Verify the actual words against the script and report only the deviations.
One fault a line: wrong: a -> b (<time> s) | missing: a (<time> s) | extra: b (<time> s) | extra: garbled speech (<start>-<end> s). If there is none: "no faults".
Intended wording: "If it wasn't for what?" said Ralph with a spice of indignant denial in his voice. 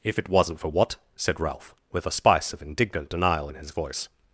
no faults